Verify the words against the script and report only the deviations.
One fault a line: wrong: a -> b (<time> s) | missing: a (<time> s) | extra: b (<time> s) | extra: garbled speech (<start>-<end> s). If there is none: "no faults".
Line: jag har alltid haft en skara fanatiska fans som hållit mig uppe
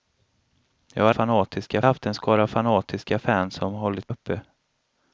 wrong: alltid -> fanatiska (1.1 s)
missing: mig (4.2 s)